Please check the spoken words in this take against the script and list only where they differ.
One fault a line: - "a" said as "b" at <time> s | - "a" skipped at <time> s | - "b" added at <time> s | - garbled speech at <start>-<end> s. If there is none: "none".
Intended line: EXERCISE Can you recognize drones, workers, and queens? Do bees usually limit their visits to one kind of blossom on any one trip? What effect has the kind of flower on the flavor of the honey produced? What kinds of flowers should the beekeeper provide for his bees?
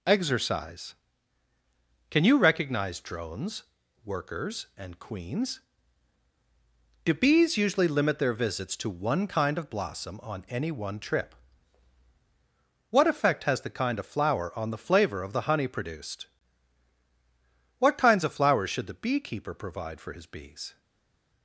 none